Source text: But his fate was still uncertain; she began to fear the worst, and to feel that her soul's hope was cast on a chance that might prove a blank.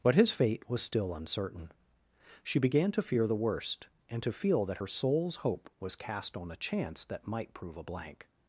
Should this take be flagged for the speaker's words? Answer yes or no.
no